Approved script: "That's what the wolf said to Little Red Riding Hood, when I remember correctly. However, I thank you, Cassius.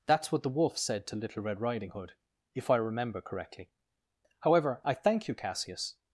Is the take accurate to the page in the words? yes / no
no